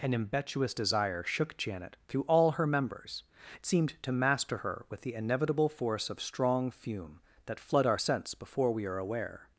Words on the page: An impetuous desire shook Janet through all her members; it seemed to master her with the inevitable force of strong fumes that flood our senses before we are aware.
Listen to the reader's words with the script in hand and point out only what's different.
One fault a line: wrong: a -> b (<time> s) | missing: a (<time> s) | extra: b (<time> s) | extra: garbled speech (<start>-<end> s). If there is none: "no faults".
wrong: fumes -> fume (6.7 s)
wrong: senses -> sense (7.9 s)